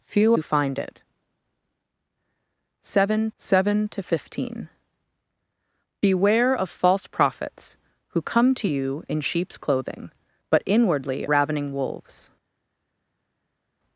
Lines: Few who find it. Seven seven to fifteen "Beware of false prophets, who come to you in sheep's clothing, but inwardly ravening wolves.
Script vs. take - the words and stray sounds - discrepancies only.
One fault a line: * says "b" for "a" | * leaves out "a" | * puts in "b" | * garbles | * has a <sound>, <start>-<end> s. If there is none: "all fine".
all fine